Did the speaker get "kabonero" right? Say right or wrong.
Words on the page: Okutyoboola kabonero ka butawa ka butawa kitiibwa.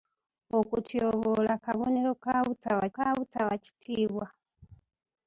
right